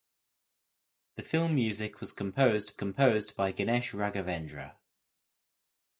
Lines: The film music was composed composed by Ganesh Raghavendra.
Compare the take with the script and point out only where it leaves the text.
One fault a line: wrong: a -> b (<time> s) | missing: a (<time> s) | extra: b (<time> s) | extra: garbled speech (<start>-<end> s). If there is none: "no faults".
no faults